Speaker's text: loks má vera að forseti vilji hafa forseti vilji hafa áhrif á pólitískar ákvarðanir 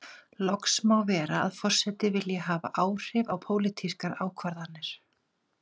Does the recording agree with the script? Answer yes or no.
no